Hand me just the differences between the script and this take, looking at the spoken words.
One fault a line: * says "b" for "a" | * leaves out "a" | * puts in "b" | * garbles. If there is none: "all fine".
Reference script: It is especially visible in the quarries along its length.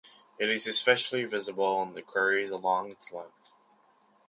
all fine